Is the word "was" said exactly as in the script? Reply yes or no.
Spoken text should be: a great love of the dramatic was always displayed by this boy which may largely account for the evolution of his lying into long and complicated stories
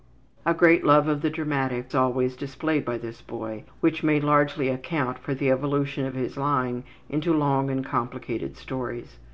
no